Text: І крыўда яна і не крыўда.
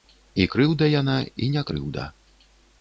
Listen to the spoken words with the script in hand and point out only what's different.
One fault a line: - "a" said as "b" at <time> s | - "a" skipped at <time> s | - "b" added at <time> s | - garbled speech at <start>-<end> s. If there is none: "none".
none